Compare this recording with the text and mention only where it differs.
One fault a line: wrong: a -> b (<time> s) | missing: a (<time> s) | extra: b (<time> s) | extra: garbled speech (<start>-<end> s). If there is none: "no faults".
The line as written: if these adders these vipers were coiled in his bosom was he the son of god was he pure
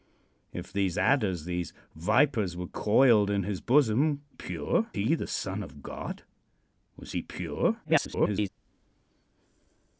wrong: was -> pure (4.3 s)
extra: garbled speech (7.8-8.5 s)